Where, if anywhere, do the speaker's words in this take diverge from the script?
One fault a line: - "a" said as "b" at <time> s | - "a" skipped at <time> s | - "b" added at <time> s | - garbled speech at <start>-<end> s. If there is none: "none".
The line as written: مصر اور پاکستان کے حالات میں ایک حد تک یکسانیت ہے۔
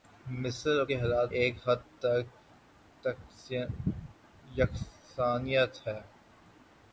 - "پاکستان" skipped at 0.8 s
- "میں" skipped at 1.3 s